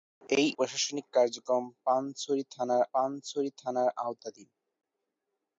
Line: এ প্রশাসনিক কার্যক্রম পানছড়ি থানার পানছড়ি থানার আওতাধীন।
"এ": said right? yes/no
yes